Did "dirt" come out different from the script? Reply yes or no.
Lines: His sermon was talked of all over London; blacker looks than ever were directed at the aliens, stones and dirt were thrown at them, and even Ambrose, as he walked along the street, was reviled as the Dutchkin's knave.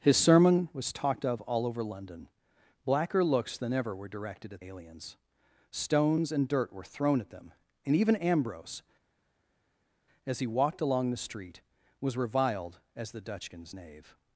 no